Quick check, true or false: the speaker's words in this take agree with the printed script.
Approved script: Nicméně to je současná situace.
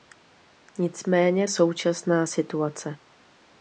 false